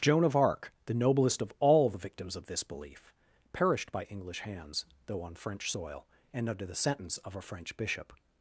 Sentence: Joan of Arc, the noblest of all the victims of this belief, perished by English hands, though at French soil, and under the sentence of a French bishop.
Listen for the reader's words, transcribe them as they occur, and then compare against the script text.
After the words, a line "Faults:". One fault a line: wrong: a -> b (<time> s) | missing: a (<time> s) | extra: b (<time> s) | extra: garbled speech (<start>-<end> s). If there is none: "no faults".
Joan of Arc, the noblest of all the victims of this belief, perished by English hands, though on French soil, and under the sentence of a French bishop.
Faults:
wrong: at -> on (5.2 s)